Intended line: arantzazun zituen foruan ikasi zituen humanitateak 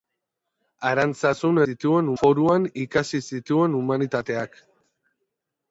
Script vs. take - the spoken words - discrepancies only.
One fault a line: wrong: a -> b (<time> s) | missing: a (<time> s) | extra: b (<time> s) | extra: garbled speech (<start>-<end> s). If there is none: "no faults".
no faults